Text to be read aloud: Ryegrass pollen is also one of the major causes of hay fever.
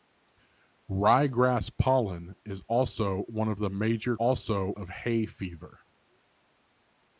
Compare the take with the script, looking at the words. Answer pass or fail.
fail